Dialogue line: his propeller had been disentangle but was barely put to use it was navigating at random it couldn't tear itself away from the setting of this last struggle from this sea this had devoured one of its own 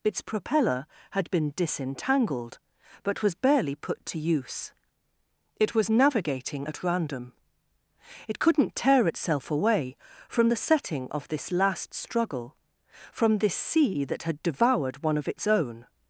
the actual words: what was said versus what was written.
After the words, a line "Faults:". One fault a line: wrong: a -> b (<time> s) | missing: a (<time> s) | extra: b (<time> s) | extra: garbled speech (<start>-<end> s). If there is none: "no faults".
its propeller had been disentangled but was barely put to use it was navigating at random it couldn't tear itself away from the setting of this last struggle from this sea that had devoured one of its own
Faults:
wrong: his -> its (0.0 s)
wrong: disentangle -> disentangled (1.6 s)
wrong: this -> that (14.0 s)